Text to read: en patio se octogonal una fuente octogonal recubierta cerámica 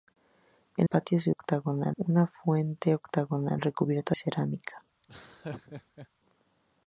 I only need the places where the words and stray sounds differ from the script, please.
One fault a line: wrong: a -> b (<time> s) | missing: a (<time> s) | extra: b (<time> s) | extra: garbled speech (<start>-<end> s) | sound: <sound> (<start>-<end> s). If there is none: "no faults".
sound: laugh (5.0-6.1 s)